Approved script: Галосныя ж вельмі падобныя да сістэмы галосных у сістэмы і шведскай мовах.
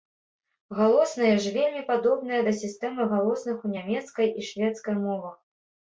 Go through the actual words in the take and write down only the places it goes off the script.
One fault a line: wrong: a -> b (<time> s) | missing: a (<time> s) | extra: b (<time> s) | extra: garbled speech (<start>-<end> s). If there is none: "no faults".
wrong: сістэмы -> нямецкай (3.8 s)